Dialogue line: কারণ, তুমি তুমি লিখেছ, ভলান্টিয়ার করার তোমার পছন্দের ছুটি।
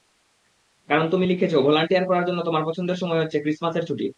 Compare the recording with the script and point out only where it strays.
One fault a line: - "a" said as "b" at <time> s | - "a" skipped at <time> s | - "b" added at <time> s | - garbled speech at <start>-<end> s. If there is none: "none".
- "তুমি" skipped at 1.2 s
- "জন্য" added at 2.3 s
- "সময় হচ্ছে ক্রিসমাসের" added at 3.0 s